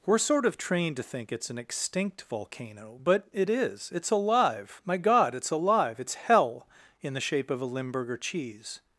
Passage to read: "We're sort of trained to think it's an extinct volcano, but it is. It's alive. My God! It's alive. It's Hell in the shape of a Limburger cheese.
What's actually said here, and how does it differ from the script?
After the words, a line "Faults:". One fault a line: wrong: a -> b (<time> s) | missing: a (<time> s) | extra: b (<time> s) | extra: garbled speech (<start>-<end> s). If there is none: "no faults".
"We're sort of trained to think it's an extinct volcano, but it is. It's alive. My God! It's alive. It's Hell in the shape of a Limburger cheese.
Faults:
no faults